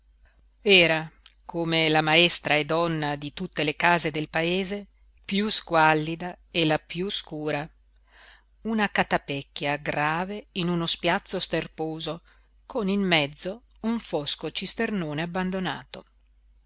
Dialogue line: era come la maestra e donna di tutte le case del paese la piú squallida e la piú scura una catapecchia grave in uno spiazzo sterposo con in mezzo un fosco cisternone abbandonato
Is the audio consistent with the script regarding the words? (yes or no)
no